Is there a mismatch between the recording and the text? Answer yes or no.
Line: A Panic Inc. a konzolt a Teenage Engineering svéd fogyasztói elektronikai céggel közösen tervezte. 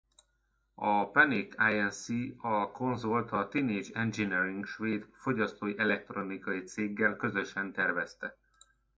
no